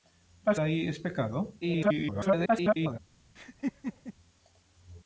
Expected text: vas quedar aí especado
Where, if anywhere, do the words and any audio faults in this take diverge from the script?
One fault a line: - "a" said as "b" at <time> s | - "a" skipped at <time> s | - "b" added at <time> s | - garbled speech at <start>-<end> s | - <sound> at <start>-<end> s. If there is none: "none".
- "quedar" skipped at 0.6 s
- garbled speech at 1.6-3.0 s
- laugh at 3.4-4.1 s